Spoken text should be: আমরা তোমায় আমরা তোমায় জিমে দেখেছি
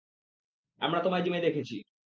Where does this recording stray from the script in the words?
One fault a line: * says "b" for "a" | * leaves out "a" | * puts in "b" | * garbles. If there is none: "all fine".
* leaves out "আমরা তোমায়"